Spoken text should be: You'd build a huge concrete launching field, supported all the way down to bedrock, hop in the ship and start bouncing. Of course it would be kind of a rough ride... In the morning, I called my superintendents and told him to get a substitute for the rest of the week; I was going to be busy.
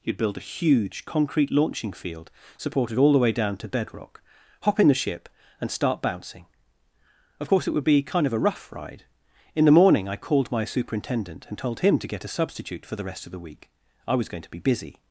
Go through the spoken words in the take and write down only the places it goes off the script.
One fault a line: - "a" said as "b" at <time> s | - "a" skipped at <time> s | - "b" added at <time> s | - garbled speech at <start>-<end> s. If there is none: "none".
- "superintendents" said as "superintendent" at 10.6 s